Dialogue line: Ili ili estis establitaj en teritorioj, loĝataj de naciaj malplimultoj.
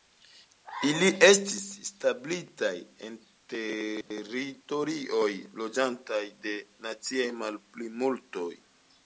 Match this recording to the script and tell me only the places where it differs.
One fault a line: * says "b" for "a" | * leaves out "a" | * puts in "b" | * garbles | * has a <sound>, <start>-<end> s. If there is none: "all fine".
* leaves out "ili"
* has a dropout, 4.0-4.1 s